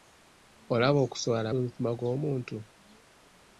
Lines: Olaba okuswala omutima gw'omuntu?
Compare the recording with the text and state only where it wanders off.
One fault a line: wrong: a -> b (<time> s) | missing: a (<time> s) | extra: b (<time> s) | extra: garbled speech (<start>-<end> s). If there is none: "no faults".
no faults